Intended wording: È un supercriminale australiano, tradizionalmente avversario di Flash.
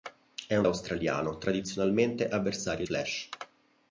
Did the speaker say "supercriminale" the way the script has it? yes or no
no